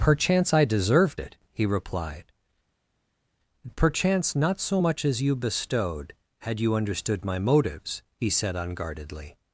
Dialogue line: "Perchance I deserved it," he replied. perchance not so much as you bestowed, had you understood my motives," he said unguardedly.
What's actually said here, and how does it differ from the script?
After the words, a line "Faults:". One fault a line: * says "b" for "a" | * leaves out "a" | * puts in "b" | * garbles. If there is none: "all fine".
"Perchance I deserved it," he replied. perchance not so much as you bestowed, had you understood my motives," he said unguardedly.
Faults:
all fine